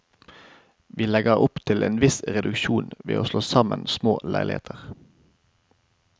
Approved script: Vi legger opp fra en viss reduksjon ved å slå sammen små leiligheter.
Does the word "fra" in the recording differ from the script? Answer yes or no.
yes